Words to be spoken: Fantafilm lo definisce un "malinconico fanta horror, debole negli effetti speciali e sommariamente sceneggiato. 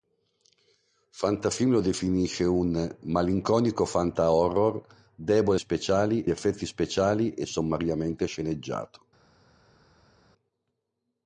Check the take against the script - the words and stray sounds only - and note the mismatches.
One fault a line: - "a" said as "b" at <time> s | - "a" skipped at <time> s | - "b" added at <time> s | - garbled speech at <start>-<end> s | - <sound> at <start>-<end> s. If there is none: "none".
- "negli" said as "speciali" at 5.6 s